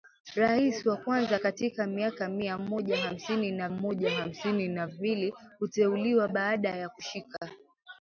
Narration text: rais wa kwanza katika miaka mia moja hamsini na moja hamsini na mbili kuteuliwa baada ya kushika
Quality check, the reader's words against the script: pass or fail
pass